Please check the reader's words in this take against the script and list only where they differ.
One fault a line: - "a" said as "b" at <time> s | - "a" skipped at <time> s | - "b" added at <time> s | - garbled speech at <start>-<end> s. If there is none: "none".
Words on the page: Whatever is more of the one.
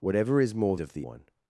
none